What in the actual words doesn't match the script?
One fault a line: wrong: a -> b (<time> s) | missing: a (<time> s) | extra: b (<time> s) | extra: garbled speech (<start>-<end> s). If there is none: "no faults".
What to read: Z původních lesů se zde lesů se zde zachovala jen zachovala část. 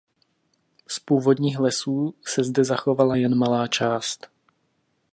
missing: lesů se zde (2.6 s)
wrong: zachovala -> malá (3.4 s)